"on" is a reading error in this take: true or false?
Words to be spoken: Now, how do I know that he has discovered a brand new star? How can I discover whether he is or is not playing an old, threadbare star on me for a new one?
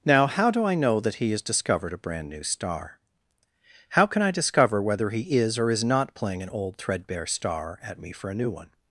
true